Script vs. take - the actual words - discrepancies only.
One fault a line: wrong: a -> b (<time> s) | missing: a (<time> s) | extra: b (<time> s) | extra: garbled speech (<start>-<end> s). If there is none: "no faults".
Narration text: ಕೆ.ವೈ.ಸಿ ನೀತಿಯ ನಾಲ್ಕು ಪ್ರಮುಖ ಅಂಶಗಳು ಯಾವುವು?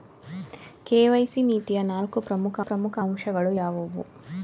extra: ಪ್ರಮುಖ (2.6 s)